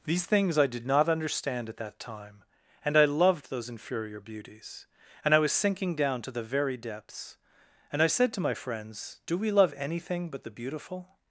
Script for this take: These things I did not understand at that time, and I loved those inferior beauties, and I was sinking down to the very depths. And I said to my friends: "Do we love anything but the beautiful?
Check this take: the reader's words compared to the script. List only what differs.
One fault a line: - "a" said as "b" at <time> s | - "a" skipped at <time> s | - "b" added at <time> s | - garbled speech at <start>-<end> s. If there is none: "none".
none